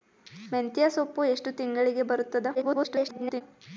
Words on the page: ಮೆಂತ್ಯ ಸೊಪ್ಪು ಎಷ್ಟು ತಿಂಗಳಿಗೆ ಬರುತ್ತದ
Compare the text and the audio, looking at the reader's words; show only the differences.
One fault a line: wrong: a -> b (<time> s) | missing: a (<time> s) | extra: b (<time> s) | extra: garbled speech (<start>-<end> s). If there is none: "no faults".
extra: garbled speech (2.5-3.4 s)